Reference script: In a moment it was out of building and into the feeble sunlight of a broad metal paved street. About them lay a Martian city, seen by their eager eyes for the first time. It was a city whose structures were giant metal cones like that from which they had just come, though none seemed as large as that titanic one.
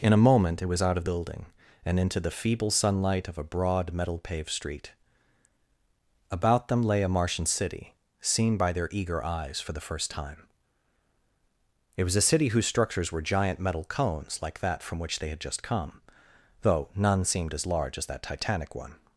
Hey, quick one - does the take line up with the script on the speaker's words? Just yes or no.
yes